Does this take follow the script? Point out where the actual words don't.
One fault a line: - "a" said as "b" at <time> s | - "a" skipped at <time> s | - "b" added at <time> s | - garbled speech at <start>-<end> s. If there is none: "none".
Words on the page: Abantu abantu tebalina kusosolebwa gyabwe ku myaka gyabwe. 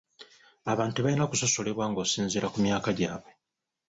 - "abantu" skipped at 0.9 s
- "gyabwe" said as "ng'osinziira" at 1.9 s